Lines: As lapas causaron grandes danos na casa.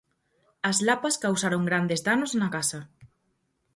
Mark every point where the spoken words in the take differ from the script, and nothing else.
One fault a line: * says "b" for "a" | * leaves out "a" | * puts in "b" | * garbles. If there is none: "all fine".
all fine